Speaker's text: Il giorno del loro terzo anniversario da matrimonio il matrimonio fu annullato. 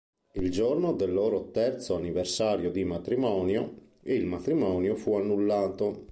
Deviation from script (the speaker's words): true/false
true